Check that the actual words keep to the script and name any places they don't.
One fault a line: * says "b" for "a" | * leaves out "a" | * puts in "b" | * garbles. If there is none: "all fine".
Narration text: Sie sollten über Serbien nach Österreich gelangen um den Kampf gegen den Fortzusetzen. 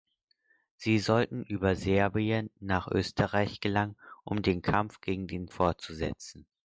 all fine